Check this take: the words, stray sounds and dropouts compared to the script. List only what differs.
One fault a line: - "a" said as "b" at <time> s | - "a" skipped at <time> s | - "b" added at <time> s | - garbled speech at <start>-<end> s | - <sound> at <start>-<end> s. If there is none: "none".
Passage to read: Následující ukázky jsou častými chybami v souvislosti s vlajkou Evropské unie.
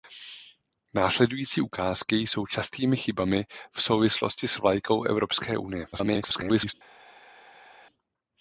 - garbled speech at 5.9-6.7 s